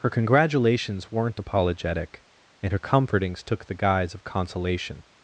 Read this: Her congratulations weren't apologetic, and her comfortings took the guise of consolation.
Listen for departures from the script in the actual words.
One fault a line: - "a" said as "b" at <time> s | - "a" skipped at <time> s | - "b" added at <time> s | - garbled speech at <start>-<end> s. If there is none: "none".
none